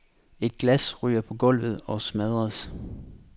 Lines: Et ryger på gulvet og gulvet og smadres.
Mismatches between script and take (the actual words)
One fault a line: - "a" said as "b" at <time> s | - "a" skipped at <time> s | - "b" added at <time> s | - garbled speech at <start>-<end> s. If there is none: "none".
- "glas" added at 0.6 s
- "gulvet og" skipped at 2.0 s